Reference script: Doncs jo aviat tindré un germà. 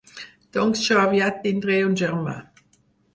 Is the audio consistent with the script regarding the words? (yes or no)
yes